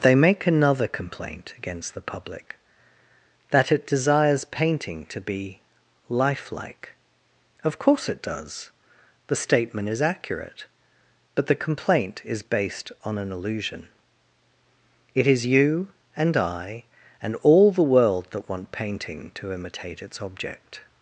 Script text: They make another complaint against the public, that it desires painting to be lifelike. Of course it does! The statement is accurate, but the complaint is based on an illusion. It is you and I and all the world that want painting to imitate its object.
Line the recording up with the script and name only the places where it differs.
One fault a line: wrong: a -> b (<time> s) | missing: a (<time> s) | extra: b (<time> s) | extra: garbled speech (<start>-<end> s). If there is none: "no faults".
no faults